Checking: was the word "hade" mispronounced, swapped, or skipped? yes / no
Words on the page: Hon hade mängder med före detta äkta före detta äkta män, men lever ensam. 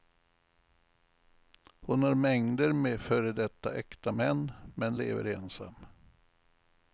yes